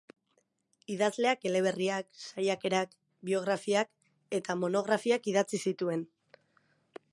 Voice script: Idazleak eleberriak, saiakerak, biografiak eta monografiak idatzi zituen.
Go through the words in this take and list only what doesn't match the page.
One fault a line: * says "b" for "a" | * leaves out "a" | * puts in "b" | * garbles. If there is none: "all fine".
all fine